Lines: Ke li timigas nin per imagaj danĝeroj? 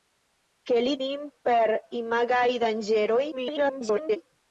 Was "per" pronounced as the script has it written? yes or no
yes